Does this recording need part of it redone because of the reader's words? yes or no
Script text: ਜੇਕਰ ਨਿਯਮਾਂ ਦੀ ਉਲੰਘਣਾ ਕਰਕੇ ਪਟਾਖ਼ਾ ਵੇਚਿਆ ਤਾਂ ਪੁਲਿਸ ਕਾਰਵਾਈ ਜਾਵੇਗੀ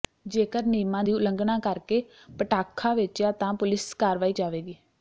no